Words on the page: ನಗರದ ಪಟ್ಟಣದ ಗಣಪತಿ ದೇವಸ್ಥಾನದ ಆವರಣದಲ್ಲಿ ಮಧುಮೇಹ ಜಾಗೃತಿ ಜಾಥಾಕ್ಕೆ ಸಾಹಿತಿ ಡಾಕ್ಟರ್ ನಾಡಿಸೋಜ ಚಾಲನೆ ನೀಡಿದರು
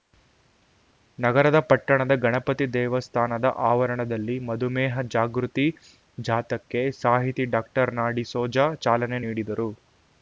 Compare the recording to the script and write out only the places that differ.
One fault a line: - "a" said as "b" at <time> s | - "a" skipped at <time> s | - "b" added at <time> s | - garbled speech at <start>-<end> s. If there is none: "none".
none